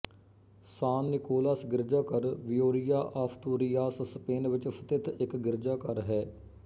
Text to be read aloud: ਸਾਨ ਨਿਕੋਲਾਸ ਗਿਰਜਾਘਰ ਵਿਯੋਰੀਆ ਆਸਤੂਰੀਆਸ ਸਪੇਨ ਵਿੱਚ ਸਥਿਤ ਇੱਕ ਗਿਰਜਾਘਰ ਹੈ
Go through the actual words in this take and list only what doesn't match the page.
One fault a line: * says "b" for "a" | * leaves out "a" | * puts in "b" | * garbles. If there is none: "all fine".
all fine